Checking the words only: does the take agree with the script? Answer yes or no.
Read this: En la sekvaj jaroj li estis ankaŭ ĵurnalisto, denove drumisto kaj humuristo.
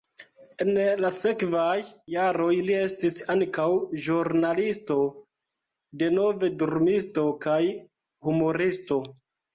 yes